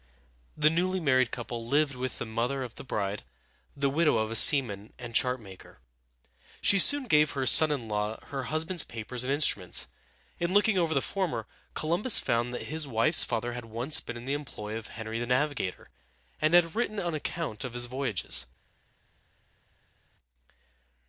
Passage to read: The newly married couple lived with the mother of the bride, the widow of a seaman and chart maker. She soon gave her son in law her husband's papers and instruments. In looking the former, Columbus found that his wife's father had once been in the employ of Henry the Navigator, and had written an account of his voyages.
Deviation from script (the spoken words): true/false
true